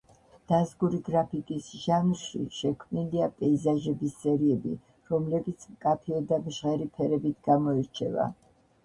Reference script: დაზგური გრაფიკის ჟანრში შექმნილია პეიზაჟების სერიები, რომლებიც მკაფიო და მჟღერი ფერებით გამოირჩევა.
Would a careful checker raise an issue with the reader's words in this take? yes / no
no